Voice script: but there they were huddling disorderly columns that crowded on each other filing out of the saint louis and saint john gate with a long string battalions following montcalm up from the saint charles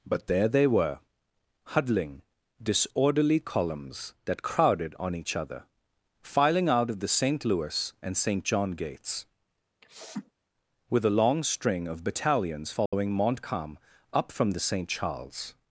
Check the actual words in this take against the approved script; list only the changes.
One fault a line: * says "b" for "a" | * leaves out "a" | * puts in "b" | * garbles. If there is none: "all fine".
* says "gates" for "gate"
* puts in "of"